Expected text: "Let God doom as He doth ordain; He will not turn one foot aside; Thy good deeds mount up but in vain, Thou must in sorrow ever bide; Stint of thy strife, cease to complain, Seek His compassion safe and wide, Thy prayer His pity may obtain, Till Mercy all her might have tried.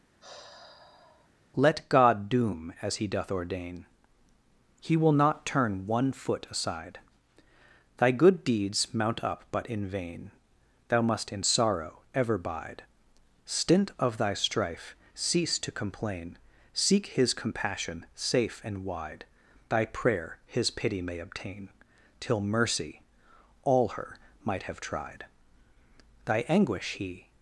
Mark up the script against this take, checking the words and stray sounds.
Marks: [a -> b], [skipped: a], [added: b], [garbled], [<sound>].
[sigh] "Let God doom as He doth ordain; He will not turn one foot aside; Thy good deeds mount up but in vain, Thou must in sorrow ever bide; Stint of thy strife, cease to complain, Seek His compassion safe and wide, Thy prayer His pity may obtain, Till Mercy all her might have tried. [added: Thy anguish He]